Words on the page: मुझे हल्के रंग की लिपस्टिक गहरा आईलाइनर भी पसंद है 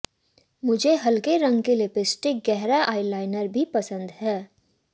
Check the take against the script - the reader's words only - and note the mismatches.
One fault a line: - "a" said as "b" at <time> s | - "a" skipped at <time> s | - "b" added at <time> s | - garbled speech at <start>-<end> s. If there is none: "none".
none